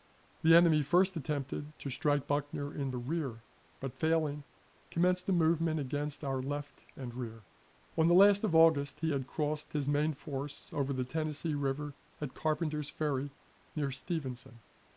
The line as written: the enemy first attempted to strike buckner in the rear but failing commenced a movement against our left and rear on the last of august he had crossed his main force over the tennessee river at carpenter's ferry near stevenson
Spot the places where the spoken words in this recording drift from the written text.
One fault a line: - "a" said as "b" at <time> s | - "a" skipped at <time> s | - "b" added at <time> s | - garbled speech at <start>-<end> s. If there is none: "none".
none